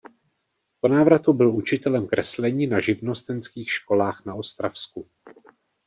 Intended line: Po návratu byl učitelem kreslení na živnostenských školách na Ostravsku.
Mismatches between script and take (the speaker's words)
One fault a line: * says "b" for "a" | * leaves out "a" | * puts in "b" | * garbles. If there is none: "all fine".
all fine